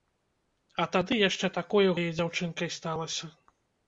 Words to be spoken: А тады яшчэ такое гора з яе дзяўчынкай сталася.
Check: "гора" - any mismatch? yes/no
yes